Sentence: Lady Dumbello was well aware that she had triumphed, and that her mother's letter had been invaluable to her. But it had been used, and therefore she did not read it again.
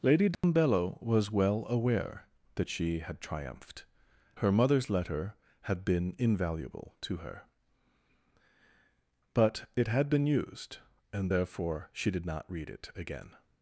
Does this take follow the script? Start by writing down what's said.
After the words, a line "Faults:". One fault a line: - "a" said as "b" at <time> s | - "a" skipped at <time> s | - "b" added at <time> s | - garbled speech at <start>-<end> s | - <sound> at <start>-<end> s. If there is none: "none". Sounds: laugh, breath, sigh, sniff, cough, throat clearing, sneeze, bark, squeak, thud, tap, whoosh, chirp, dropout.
Lady Dumbello was well aware that she had triumphed, her mother's letter had been invaluable to her. But it had been used, and therefore she did not read it again.
Faults:
- dropout at 0.3-0.4 s
- "and that" skipped at 3.9 s